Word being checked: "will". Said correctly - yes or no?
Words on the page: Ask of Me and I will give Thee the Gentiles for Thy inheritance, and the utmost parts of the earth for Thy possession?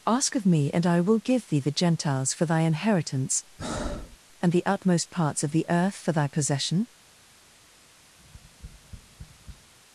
yes